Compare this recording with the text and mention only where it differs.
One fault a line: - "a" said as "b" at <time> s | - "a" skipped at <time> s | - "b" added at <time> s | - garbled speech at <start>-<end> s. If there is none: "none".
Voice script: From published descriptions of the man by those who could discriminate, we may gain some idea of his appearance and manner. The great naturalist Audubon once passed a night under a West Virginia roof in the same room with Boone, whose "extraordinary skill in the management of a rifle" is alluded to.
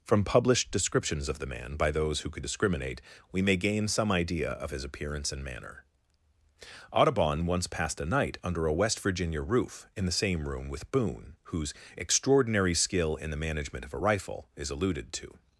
- "The great naturalist" skipped at 5.8 s